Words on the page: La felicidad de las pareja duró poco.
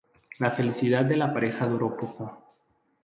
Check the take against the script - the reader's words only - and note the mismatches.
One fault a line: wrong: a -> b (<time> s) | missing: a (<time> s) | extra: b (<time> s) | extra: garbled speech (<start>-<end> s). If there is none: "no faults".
wrong: las -> la (1.1 s)